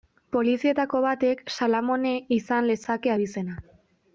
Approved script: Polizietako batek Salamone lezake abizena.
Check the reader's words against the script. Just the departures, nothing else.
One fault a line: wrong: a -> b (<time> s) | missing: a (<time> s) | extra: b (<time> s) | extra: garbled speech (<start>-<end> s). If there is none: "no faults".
extra: izan (2.4 s)